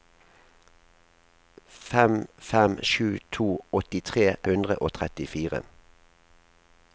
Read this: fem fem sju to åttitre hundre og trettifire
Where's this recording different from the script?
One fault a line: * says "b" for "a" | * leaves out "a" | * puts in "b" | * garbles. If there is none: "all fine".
all fine